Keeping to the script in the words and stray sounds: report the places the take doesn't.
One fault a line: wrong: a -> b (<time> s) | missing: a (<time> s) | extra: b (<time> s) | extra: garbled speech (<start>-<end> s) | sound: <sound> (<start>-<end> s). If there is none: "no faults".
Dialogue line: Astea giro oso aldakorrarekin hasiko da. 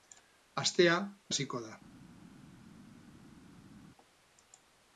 missing: giro oso aldakorrarekin (0.9 s)